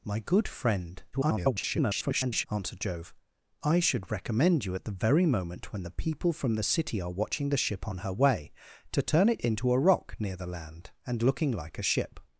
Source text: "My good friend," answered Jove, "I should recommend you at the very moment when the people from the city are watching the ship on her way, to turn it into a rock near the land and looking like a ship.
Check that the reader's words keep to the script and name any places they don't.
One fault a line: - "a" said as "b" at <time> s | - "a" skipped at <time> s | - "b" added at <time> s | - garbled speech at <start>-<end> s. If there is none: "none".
- garbled speech at 1.1-2.5 s